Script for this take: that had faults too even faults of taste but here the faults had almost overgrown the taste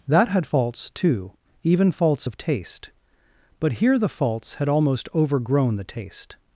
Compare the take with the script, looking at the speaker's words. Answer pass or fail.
pass